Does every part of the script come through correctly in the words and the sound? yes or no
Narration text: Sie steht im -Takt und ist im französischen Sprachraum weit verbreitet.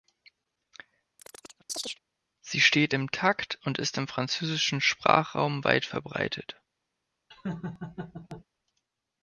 no